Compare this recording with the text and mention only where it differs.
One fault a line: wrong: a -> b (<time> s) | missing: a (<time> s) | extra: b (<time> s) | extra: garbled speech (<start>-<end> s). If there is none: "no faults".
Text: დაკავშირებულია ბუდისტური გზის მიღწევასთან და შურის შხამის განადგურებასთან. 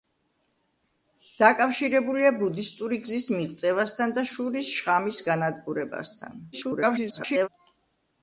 extra: garbled speech (6.5-7.5 s)